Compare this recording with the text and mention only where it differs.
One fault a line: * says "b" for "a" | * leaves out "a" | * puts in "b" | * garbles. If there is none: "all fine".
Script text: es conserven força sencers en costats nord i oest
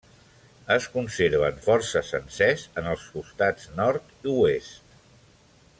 * puts in "els"